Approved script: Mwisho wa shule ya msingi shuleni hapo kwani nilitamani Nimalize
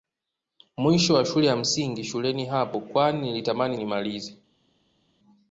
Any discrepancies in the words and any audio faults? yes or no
no